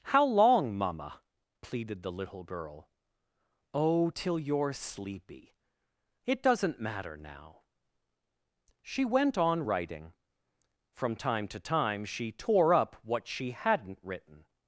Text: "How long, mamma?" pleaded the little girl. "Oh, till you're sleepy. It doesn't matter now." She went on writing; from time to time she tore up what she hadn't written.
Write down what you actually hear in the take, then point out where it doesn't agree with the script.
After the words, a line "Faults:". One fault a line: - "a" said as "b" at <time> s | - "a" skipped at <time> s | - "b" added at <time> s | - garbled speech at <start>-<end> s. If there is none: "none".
"How long, mamma?" pleaded the little girl. "Oh, till you're sleepy. It doesn't matter now." She went on writing; from time to time she tore up what she hadn't written.
Faults:
none